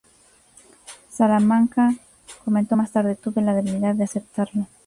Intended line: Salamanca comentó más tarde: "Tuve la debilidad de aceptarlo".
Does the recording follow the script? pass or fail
pass